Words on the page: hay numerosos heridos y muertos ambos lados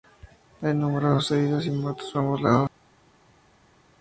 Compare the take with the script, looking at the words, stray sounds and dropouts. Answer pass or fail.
pass